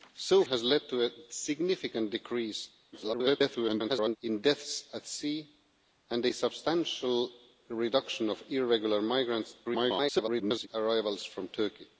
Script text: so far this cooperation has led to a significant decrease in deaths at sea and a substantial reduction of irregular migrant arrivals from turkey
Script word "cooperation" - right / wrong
wrong